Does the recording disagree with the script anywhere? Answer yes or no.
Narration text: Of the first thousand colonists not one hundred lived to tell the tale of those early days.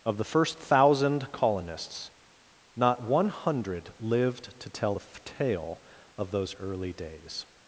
no